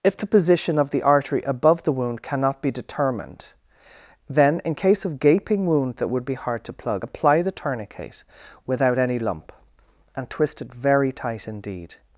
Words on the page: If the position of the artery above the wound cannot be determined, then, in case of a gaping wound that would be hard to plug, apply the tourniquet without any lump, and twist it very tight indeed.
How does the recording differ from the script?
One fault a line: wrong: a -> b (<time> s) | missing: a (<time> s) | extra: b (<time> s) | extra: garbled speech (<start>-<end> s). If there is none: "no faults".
missing: a (5.2 s)